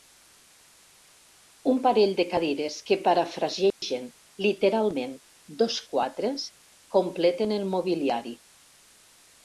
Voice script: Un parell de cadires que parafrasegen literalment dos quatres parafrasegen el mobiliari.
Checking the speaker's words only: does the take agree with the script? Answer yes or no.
no